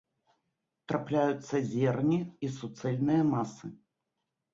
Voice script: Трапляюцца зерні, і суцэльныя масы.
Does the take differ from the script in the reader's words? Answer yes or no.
no